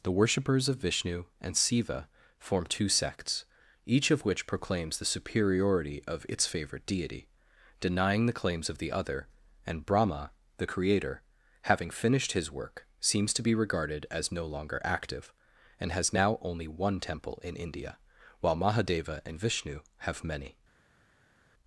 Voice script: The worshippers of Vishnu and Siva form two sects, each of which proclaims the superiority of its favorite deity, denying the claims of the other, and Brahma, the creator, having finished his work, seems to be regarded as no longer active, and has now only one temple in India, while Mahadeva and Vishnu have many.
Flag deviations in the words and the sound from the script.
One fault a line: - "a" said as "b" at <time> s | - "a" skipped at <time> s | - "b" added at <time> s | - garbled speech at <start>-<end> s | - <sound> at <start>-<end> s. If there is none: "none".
none